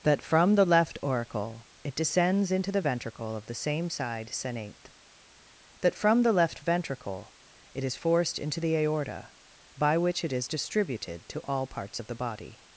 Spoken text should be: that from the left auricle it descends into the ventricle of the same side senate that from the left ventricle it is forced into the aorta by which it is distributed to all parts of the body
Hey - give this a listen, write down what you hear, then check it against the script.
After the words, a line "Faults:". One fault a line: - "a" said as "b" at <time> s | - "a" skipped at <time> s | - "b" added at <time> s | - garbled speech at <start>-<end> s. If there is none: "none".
that from the left auricle it descends into the ventricle of the same side senate that from the left ventricle it is forced into the aorta by which it is distributed to all parts of the body
Faults:
none